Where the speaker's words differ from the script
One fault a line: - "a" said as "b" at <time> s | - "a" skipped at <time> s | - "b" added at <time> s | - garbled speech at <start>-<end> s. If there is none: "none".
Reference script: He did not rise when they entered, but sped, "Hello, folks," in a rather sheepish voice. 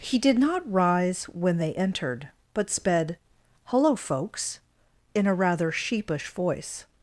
none